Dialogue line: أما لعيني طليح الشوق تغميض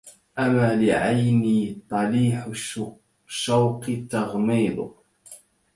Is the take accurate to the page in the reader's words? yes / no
yes